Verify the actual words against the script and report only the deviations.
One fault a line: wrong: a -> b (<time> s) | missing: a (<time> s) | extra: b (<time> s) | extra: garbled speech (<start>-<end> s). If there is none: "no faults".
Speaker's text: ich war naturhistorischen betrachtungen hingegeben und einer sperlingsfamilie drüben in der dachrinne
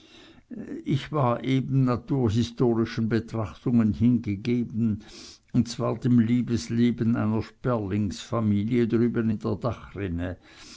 extra: eben (1.4 s)
extra: zwar dem liebesleben (5.7 s)